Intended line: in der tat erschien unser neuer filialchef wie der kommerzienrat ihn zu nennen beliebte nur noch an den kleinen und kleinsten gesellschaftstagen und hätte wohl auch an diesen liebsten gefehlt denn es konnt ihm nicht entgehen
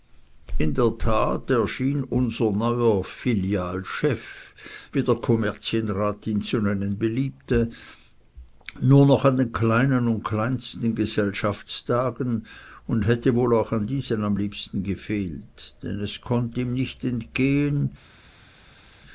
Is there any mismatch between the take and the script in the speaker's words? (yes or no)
yes